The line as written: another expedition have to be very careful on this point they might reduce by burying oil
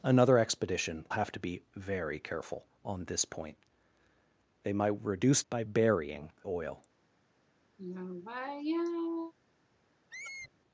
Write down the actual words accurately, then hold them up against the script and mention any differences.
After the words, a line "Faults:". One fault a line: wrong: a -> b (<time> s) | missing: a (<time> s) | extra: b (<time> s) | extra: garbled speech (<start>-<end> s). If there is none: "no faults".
another expedition have to be very careful on this point they might reduce by burying oil
Faults:
no faults